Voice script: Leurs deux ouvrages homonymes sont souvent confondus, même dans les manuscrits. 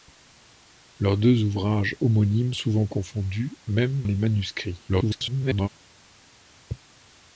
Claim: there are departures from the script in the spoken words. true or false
true